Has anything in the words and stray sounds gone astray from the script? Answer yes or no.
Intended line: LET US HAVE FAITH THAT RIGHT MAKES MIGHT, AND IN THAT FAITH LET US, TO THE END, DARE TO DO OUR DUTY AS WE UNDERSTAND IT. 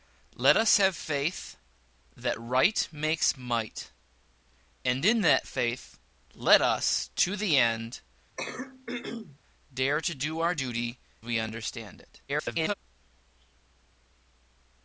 yes